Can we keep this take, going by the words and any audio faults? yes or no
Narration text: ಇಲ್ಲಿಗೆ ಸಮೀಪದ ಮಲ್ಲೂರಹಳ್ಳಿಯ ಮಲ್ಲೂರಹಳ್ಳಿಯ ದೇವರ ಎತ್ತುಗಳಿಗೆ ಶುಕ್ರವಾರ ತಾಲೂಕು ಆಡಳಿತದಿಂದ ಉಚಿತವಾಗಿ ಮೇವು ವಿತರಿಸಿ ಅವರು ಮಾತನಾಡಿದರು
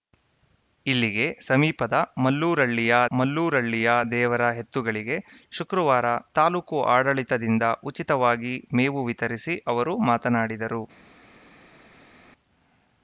yes